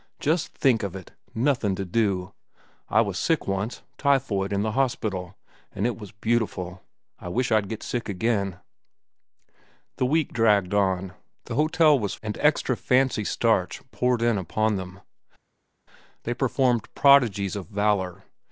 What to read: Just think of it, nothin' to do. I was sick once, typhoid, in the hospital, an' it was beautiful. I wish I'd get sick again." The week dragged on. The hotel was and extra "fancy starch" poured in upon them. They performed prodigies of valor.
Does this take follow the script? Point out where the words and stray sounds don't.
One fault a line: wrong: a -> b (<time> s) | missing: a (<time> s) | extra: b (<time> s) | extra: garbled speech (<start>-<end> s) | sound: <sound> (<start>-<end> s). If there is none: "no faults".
no faults